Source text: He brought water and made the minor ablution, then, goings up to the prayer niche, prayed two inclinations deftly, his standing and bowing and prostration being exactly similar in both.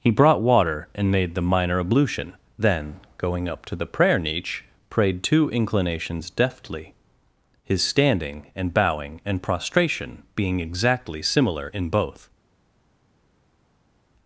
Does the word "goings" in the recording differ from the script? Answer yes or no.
yes